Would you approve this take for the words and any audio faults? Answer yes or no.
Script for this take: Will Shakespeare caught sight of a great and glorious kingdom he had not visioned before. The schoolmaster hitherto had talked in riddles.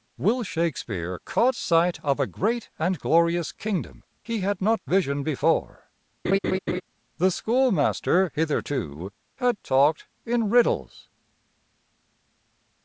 no